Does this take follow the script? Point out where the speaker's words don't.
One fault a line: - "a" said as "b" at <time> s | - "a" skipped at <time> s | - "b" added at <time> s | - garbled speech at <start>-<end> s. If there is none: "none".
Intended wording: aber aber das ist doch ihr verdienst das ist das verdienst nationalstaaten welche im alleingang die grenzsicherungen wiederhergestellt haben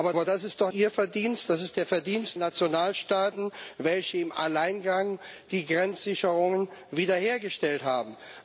none